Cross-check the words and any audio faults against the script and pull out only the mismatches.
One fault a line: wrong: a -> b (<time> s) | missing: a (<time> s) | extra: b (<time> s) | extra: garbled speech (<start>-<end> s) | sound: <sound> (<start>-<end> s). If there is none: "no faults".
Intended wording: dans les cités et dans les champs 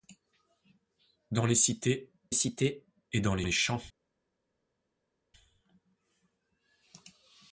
extra: cités (2.3 s)
extra: les (3.4 s)